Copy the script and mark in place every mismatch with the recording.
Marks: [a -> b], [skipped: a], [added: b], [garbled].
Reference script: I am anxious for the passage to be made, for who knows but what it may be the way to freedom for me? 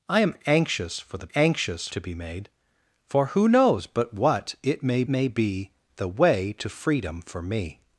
I am anxious for the [passage -> anxious] to be made, for who knows but what it may [added: may] be the way to freedom for me?